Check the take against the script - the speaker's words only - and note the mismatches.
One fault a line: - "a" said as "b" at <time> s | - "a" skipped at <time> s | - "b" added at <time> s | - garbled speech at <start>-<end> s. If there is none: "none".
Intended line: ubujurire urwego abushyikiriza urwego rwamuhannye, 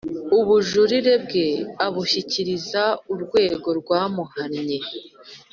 - "urwego" said as "bwe" at 1.2 s